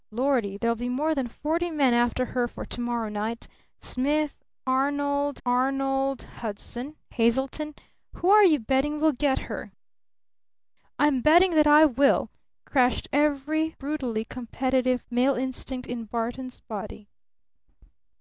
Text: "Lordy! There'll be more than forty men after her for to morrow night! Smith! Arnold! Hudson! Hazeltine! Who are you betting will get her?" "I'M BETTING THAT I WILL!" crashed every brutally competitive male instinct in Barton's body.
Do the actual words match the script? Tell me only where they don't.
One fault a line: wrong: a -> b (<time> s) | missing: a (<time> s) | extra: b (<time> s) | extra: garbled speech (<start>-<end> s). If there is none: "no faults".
extra: arnold (5.4 s)